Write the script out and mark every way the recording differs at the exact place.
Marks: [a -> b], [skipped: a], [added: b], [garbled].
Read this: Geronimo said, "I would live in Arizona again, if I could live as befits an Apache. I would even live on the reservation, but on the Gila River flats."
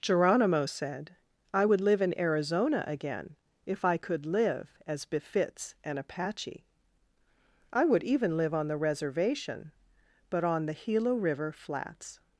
Geronimo said, "I would live in Arizona again, if I could live as befits an Apache. I would even live on the reservation, but on the Gila River flats."